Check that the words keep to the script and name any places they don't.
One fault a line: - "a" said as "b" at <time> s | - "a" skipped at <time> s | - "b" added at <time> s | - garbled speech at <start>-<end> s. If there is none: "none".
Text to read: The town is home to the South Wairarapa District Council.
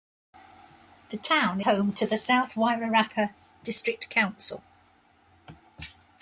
- "is" skipped at 1.6 s